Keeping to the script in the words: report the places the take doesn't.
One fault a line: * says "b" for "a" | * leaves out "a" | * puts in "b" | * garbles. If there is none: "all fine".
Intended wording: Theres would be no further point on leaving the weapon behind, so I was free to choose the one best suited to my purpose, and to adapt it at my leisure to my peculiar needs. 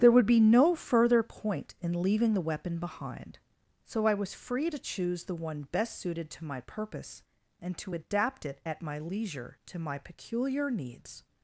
* says "There" for "Theres"
* says "in" for "on"